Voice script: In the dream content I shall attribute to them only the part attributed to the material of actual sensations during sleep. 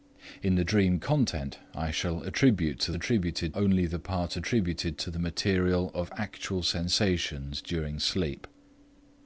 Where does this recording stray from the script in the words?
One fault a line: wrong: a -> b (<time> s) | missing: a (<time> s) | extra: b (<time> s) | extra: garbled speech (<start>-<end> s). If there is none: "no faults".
wrong: them -> attributed (3.0 s)